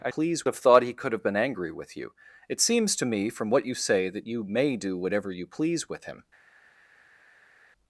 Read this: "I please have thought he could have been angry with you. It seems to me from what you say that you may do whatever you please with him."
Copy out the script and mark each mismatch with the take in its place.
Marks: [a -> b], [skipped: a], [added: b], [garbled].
"I please have thought he could have been angry with you. It seems to me from what you say that you may do whatever you please with him."